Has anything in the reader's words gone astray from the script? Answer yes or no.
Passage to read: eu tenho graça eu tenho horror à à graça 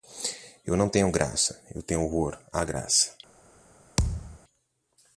yes